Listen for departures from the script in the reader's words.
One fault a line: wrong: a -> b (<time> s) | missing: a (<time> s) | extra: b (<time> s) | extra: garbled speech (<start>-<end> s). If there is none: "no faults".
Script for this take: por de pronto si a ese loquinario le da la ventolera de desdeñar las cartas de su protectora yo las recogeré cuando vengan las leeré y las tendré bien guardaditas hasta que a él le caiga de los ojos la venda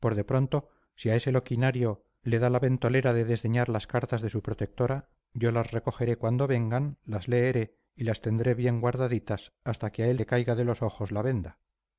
no faults